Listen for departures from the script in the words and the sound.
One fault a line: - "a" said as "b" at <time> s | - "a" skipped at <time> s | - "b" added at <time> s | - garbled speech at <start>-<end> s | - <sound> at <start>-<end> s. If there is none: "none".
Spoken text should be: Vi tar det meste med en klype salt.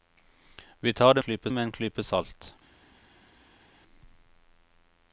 - "meste" said as "klype" at 1.2 s